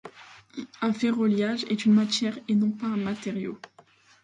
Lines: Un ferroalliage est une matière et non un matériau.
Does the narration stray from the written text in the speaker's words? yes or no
yes